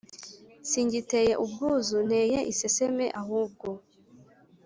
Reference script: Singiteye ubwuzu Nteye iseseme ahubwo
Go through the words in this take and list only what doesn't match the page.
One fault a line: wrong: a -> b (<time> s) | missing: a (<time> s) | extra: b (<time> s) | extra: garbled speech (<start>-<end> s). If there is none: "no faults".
no faults